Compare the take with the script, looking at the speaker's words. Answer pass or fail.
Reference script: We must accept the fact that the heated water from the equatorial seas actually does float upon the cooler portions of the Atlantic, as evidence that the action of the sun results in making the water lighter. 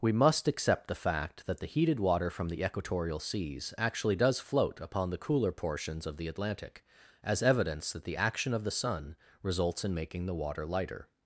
pass